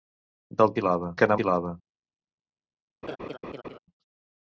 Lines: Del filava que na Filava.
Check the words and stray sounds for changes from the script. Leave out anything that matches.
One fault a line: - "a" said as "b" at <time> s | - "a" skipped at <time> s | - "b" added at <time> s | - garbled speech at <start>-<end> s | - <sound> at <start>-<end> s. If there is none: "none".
- laugh at 3.0-3.8 s